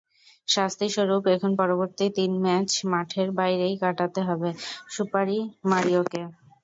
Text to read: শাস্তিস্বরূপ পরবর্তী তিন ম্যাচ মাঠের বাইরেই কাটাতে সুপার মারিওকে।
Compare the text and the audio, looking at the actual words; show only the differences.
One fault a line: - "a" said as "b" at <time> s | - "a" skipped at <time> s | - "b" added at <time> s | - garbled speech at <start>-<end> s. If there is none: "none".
- "এখন" added at 1.4 s
- "হবে" added at 4.3 s